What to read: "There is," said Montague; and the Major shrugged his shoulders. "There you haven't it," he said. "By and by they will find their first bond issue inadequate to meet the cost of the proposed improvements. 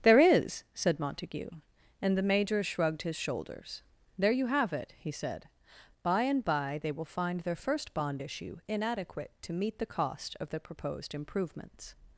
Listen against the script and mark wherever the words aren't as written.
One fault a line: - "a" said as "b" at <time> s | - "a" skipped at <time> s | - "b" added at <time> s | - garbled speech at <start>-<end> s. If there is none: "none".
- "haven't" said as "have" at 4.5 s